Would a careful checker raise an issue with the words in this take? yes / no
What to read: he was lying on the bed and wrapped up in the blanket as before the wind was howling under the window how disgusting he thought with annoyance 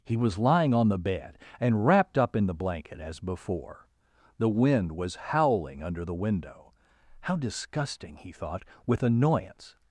no